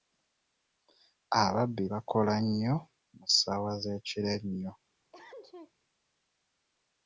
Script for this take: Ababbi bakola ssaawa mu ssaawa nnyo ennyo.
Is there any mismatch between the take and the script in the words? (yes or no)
yes